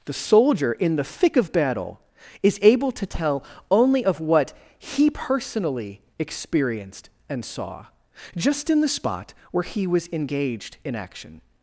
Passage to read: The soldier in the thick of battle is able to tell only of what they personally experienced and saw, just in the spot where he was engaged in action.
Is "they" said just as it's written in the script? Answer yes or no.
no